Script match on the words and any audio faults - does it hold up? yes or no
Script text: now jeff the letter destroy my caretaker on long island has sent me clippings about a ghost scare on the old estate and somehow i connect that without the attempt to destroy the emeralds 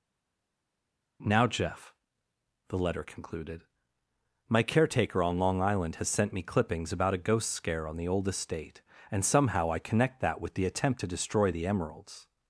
no